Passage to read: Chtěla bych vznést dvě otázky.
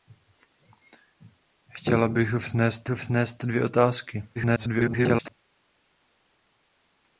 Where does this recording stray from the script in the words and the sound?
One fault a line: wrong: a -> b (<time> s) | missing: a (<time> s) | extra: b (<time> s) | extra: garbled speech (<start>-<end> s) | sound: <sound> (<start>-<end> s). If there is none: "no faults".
extra: vznést (2.9 s)
extra: garbled speech (4.4-5.3 s)